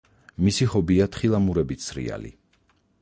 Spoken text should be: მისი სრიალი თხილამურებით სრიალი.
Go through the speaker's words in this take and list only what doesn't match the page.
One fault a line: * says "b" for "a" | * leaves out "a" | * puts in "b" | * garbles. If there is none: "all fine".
* says "ჰობია" for "სრიალი"